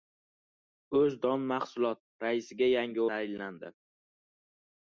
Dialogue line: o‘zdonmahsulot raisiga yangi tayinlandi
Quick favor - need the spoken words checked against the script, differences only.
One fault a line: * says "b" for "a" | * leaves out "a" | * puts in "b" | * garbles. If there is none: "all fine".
all fine